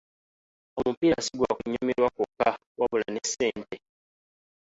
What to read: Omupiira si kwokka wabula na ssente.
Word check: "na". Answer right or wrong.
wrong